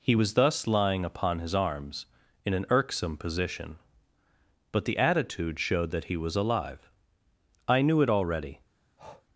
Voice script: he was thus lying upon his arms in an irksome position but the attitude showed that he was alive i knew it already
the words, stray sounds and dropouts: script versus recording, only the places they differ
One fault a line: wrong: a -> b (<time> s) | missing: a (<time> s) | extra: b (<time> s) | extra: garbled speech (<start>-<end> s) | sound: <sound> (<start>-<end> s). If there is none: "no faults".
sound: breath (9.0-9.3 s)